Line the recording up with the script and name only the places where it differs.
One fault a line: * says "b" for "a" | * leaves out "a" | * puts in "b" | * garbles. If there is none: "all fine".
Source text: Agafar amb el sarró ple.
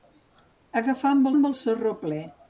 * puts in "amb"